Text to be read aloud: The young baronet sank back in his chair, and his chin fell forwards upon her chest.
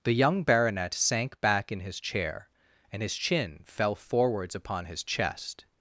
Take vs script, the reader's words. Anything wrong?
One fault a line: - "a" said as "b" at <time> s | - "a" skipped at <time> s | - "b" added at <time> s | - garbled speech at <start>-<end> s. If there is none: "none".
- "her" said as "his" at 4.9 s